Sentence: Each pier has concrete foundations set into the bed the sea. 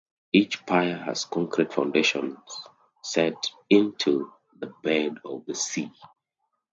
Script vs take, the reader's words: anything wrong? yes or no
yes